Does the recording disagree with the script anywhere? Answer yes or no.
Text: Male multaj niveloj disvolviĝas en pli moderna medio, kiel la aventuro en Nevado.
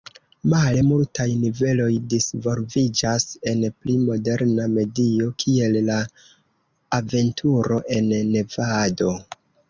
no